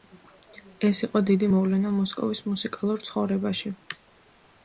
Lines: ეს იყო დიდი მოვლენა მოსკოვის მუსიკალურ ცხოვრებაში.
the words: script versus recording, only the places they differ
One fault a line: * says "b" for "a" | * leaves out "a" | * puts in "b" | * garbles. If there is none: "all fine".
all fine